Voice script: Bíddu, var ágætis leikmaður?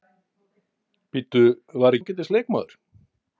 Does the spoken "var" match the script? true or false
true